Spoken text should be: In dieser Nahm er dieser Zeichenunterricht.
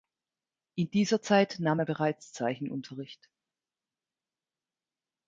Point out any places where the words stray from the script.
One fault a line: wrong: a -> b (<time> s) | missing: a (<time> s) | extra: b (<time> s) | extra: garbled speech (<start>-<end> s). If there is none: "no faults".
extra: Zeit (1.2 s)
wrong: dieser -> bereits (1.8 s)